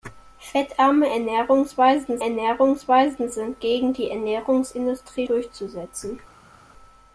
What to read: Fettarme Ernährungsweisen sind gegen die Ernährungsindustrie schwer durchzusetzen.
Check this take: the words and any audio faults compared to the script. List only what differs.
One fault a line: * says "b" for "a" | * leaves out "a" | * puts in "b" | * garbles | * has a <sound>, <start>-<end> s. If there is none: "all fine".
* puts in "Ernährungsweisen"
* leaves out "schwer"